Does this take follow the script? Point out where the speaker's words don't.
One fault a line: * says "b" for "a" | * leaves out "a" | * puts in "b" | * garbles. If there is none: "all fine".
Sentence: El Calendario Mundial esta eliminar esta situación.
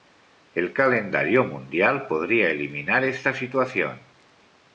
* says "podría" for "esta"